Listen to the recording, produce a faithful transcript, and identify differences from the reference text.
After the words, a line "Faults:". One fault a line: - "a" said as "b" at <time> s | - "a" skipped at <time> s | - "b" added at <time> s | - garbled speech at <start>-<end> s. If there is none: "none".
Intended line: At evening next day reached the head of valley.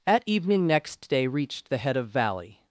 At evening next day reached the head of valley.
Faults:
none